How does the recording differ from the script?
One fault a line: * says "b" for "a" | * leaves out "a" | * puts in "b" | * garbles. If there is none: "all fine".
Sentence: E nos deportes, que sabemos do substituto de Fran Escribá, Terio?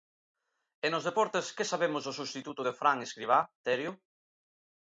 all fine